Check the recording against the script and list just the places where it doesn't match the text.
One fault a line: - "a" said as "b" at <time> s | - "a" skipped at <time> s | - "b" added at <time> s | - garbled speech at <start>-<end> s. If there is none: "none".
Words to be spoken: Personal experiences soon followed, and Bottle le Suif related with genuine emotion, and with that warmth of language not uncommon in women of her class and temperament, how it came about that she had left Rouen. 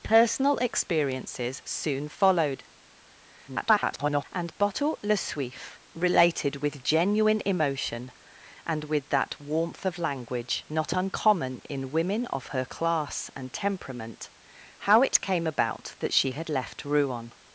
- garbled speech at 3.5-4.2 s